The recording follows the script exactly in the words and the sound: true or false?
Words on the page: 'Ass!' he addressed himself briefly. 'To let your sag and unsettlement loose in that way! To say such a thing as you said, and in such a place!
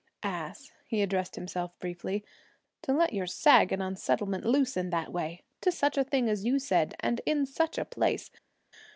false